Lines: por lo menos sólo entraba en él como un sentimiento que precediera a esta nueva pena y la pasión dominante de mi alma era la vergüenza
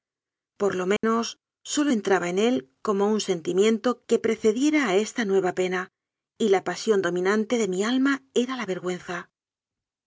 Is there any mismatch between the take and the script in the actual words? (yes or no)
no